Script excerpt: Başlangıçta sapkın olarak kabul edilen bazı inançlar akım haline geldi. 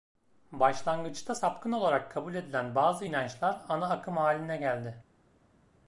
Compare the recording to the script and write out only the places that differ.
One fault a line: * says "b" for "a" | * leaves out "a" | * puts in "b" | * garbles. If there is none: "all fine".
* puts in "ana"